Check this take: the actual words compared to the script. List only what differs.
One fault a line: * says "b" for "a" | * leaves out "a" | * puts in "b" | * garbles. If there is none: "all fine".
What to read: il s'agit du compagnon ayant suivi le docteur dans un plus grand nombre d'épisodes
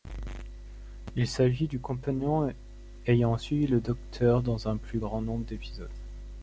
all fine